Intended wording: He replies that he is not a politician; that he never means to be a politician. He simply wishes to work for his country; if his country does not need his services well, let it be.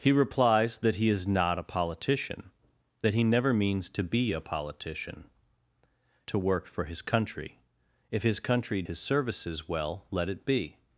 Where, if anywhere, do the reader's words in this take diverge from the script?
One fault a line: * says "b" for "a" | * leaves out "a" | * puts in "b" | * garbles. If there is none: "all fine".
* leaves out "He simply wishes"
* leaves out "does not need"